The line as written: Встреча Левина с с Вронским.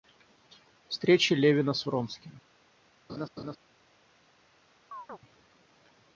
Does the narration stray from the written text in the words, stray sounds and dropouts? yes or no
yes